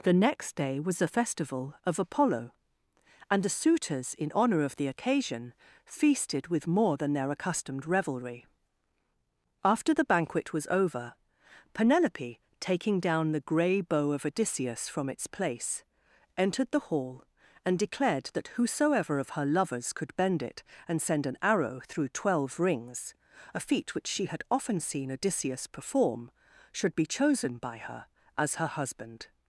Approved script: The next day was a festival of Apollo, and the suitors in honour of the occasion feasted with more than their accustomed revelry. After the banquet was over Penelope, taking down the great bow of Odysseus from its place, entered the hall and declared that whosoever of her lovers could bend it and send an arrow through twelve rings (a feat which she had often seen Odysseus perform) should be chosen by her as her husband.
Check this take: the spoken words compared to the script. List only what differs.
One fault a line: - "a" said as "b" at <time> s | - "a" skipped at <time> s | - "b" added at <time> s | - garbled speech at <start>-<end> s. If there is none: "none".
- "great" said as "grey" at 13.4 s